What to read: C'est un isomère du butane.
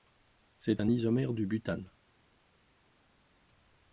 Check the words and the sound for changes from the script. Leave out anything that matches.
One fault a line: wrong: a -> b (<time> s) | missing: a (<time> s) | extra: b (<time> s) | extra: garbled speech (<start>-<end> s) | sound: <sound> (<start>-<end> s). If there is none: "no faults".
no faults